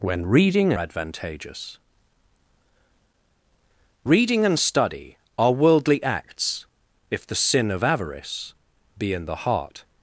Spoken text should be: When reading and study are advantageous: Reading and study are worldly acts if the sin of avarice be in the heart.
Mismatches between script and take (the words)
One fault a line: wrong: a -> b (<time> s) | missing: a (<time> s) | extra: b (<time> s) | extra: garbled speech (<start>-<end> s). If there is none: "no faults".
missing: and study are (0.7 s)